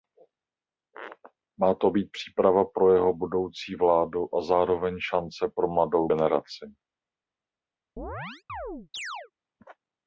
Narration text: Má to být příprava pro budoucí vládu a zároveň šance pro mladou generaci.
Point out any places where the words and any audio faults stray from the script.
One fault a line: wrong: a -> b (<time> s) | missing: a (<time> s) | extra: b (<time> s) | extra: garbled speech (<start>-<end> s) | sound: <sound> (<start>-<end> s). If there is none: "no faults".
extra: jeho (2.9 s)
sound: chirp (8.0-9.3 s)